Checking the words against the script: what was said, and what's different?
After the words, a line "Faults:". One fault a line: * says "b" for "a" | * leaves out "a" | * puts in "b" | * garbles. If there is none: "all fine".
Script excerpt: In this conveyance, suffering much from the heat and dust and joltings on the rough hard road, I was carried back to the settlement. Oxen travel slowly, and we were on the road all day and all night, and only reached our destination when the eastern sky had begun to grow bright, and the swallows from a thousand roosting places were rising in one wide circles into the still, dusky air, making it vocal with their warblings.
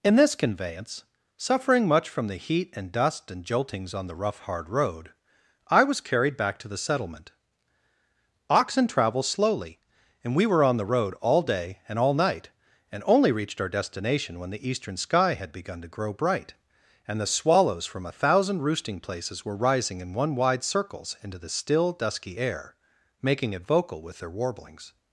In this conveyance, suffering much from the heat and dust and joltings on the rough hard road, I was carried back to the settlement. Oxen travel slowly, and we were on the road all day and all night, and only reached our destination when the eastern sky had begun to grow bright, and the swallows from a thousand roosting places were rising in one wide circles into the still, dusky air, making it vocal with their warblings.
Faults:
all fine